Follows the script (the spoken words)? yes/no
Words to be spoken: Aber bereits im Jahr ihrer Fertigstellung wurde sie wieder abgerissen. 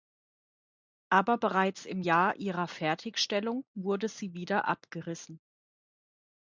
yes